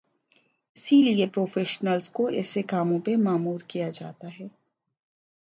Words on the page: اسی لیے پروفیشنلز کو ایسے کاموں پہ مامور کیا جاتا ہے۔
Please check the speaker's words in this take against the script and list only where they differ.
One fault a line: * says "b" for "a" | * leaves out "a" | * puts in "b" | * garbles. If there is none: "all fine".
all fine